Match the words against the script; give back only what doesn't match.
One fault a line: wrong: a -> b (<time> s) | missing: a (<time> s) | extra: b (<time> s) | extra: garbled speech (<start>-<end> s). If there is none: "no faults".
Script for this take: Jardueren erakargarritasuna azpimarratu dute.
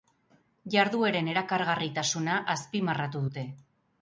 no faults